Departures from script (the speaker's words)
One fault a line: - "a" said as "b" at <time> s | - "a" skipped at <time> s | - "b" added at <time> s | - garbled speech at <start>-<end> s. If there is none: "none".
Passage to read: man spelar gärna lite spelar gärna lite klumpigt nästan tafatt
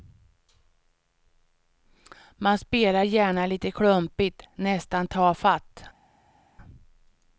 - "spelar gärna lite" skipped at 3.7 s